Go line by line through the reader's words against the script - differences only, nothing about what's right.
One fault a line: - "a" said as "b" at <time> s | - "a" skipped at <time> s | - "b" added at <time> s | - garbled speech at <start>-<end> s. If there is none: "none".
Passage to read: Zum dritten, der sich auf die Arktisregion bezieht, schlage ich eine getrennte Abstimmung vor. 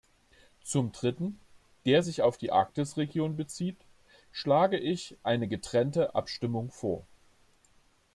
none